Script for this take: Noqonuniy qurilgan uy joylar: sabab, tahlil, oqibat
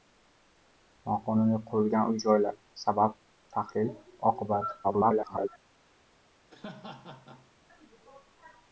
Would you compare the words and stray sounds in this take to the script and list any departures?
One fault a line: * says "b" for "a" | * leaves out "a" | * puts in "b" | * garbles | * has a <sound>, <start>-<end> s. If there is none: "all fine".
* garbles
* has a laugh, 6.5-7.5 s